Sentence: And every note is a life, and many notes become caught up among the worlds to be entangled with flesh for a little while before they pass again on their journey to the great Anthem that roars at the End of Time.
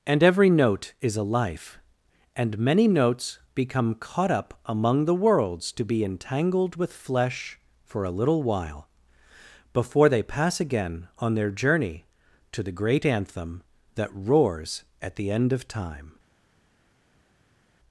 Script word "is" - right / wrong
right